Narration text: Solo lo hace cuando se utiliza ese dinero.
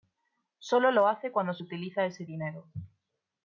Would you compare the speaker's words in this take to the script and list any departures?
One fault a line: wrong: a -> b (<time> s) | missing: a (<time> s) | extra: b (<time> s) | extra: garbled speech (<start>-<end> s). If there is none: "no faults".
no faults